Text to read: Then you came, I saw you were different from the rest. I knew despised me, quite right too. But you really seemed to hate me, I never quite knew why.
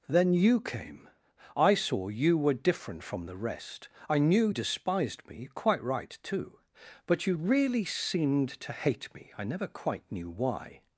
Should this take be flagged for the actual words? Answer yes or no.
no